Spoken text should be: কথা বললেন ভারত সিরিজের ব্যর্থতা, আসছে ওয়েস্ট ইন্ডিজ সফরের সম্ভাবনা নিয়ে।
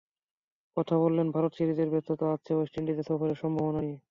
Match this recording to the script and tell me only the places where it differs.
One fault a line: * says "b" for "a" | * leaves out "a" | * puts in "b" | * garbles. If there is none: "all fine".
all fine